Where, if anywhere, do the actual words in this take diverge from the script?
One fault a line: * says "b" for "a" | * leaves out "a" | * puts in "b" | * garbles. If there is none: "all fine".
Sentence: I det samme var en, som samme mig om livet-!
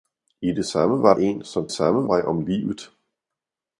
all fine